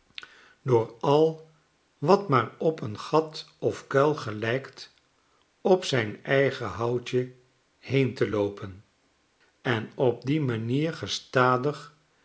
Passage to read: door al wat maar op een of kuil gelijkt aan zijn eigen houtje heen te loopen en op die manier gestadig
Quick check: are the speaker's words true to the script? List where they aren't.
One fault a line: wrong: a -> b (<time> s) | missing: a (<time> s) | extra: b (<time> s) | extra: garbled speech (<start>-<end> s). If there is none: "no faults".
extra: gat (3.0 s)
wrong: aan -> op (5.6 s)